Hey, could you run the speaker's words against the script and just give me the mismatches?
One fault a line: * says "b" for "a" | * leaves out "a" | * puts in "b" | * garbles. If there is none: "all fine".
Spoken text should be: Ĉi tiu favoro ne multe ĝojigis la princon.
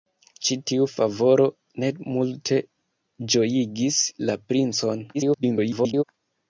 * garbles